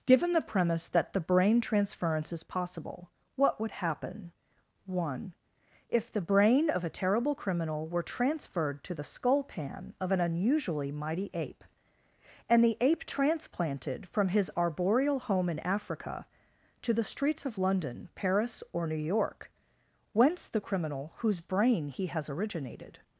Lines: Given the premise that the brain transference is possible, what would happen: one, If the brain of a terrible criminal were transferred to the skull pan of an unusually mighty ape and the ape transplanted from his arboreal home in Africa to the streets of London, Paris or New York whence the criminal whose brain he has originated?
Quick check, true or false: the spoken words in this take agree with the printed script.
true